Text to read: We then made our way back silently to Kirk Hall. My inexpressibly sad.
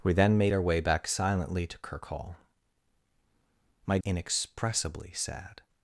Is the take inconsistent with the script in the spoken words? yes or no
no